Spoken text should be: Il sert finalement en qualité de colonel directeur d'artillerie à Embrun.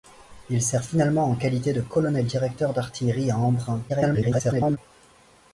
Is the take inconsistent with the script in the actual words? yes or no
yes